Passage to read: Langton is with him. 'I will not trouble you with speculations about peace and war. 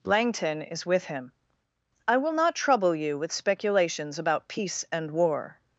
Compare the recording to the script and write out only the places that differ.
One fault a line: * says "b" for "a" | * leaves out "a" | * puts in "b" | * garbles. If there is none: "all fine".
all fine